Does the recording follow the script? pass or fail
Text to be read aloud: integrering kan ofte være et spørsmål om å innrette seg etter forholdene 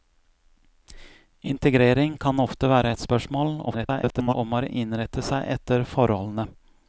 fail